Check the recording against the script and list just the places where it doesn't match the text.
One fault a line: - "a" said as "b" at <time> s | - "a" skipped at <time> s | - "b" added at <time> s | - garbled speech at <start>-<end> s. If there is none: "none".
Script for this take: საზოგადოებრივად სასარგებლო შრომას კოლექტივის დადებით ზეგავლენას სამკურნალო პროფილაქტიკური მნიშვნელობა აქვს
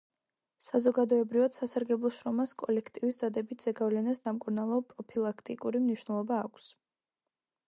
none